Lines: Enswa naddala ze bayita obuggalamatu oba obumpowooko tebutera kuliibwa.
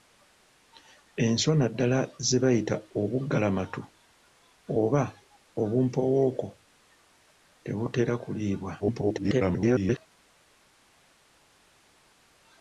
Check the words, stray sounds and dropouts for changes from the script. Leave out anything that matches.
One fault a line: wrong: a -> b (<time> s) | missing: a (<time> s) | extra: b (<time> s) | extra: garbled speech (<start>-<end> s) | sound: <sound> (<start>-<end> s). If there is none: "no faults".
extra: garbled speech (8.8-10.0 s)